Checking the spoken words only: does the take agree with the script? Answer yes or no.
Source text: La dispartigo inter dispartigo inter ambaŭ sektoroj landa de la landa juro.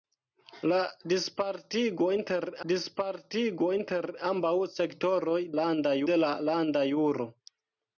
yes